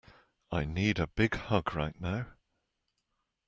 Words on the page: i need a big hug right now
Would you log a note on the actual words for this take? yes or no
no